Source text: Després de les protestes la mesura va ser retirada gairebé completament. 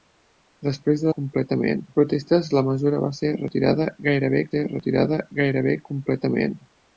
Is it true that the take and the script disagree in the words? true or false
true